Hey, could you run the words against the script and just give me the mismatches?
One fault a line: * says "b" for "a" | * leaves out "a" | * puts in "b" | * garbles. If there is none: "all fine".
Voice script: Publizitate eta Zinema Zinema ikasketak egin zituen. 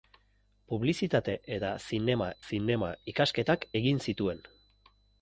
all fine